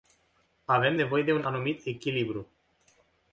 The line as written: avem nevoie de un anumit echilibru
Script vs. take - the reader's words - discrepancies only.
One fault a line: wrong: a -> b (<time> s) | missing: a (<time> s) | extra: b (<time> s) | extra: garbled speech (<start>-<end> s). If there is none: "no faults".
no faults